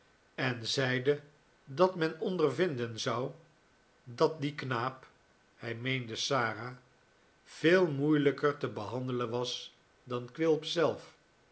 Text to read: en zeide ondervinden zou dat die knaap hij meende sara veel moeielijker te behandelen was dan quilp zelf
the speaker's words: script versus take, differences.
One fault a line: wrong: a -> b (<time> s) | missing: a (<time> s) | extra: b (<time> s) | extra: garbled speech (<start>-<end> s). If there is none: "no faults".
extra: dat men (1.6 s)